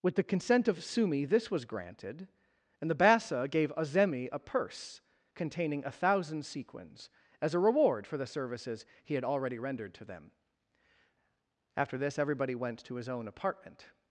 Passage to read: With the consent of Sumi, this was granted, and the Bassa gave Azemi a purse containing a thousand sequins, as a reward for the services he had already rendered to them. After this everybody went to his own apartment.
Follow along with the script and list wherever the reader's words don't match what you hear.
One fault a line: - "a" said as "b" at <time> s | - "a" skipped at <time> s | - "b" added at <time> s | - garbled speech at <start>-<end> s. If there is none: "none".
none